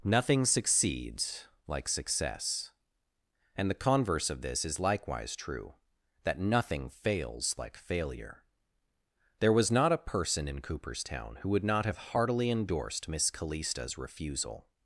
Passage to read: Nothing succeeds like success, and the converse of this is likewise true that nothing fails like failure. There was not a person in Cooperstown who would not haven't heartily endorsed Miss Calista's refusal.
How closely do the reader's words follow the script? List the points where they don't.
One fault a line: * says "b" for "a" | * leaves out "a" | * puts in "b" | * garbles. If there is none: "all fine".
* says "have" for "haven't"